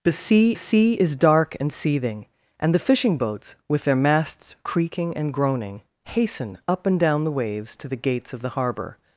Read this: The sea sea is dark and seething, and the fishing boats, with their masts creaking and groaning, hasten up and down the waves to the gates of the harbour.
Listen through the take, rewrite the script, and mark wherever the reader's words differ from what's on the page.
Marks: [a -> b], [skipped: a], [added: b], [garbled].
The sea sea is dark and seething, and the fishing boats, with their masts creaking and groaning, hasten up and down the waves to the gates of the harbour.